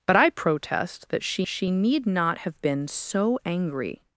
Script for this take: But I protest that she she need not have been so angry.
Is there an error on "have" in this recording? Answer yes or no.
no